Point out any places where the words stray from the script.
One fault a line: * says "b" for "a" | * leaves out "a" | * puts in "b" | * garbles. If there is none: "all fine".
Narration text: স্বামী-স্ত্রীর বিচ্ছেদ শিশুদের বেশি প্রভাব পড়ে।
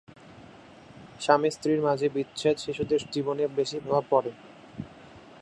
* puts in "মাঝে"
* puts in "জীবনে"